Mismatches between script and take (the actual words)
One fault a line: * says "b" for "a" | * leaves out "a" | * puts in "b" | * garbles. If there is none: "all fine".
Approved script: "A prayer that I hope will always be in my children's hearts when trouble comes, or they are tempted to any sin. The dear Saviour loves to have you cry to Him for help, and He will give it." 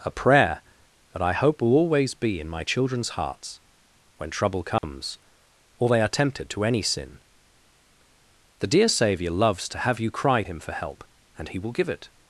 * leaves out "to"